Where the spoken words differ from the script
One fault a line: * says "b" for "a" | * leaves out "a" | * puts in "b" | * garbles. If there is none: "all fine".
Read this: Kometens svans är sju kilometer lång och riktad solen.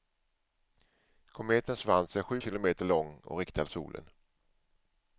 all fine